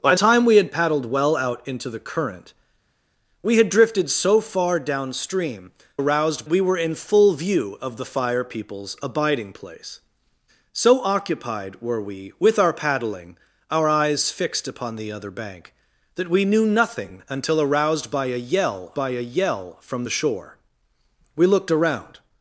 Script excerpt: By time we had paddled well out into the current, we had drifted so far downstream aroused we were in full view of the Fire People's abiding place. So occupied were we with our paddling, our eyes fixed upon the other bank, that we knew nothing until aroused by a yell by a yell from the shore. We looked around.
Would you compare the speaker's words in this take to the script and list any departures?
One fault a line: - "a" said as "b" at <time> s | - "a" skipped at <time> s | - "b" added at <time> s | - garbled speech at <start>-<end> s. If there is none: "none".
none